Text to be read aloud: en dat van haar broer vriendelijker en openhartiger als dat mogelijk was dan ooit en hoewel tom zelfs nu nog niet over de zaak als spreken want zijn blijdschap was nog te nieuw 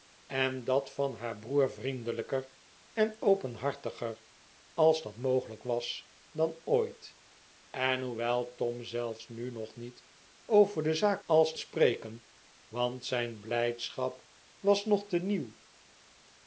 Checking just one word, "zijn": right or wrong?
right